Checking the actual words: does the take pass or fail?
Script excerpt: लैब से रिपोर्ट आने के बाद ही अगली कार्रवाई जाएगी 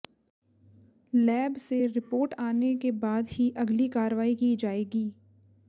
fail